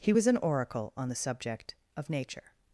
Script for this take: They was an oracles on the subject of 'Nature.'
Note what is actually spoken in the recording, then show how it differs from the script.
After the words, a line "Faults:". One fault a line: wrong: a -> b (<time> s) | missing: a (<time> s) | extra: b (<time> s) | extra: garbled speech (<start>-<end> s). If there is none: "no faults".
He was an oracle on the subject of 'Nature.'
Faults:
wrong: They -> He (0.0 s)
wrong: oracles -> oracle (0.4 s)